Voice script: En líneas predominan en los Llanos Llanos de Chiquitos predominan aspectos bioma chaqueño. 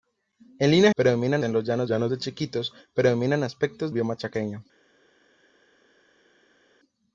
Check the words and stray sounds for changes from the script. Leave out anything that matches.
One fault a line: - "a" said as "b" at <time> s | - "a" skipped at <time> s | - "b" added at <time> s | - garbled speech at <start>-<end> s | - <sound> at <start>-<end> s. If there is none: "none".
none